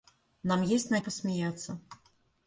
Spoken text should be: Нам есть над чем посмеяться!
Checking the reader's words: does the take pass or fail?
fail